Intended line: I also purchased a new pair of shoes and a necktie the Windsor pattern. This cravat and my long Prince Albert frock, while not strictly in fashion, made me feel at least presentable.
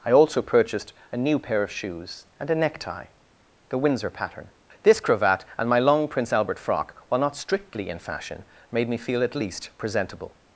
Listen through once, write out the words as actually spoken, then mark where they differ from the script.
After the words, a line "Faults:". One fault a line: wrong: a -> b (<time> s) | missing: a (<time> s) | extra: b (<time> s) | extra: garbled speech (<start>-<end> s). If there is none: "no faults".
I also purchased a new pair of shoes and a necktie the Windsor pattern. This cravat and my long Prince Albert frock, while not strictly in fashion, made me feel at least presentable.
Faults:
no faults